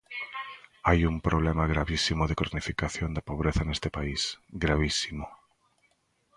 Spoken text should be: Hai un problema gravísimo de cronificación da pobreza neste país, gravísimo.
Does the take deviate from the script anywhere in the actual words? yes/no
no